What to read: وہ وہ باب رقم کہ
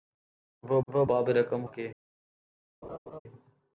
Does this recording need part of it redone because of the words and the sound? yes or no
yes